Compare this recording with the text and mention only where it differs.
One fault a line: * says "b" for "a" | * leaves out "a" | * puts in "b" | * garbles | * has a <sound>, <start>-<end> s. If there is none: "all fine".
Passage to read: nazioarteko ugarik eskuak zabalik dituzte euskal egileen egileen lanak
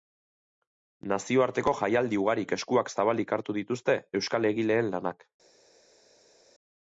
* puts in "jaialdi"
* puts in "hartu"
* leaves out "egileen"